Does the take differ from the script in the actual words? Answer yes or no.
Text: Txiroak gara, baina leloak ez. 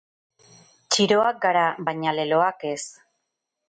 no